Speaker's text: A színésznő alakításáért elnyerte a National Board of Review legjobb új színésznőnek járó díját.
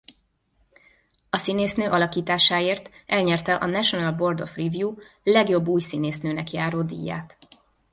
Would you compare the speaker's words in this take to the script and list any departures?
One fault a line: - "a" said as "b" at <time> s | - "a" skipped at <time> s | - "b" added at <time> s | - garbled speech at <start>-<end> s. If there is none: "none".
none